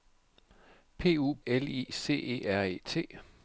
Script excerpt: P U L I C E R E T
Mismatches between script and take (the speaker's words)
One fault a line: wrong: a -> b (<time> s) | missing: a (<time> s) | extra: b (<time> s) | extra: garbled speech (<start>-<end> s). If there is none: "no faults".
no faults